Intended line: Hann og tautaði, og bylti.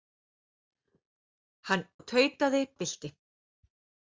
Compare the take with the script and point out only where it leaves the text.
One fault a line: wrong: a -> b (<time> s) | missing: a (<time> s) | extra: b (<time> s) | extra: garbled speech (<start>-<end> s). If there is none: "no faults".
no faults